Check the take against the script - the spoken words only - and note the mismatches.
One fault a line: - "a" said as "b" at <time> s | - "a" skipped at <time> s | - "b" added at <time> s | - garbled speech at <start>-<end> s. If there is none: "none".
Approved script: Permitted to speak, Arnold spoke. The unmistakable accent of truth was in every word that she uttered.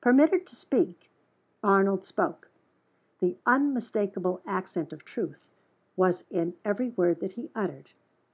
- "she" said as "he" at 7.3 s